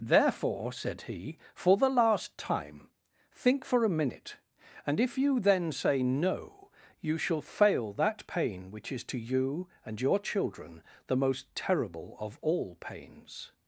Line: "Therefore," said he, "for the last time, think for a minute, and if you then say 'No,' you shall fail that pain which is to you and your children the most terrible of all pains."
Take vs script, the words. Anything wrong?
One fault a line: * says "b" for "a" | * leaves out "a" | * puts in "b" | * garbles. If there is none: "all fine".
all fine